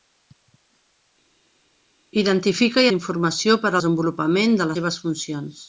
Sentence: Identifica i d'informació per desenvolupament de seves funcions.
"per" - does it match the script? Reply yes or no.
yes